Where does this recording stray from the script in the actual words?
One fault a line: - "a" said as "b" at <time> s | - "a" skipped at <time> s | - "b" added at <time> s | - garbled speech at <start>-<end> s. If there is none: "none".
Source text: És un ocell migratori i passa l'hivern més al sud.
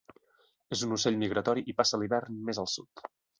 none